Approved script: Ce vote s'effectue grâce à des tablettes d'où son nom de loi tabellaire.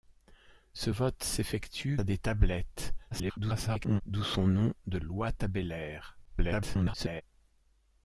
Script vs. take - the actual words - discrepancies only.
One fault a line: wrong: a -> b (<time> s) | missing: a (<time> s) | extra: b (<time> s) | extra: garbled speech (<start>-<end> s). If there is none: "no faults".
missing: grâce (2.0 s)
extra: garbled speech (3.1-4.0 s)
extra: garbled speech (6.2-7.2 s)